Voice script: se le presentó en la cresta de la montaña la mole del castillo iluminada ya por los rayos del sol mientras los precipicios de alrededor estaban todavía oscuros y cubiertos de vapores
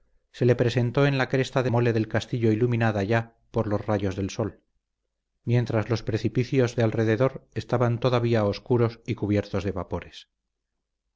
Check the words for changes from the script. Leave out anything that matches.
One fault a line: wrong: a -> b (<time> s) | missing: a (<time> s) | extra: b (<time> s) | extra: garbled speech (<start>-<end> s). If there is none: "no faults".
missing: la montaña la (1.7 s)